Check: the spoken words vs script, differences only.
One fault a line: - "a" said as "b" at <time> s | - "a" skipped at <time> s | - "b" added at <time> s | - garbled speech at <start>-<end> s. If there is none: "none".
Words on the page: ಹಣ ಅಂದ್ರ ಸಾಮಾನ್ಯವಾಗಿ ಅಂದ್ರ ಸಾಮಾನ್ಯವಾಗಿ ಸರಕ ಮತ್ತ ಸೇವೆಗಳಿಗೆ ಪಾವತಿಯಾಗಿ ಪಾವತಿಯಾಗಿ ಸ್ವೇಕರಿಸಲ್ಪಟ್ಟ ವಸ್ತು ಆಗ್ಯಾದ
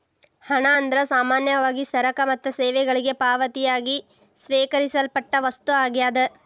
- "ಅಂದ್ರ ಸಾಮಾನ್ಯವಾಗಿ" skipped at 1.8 s
- "ಪಾವತಿಯಾಗಿ" skipped at 4.0 s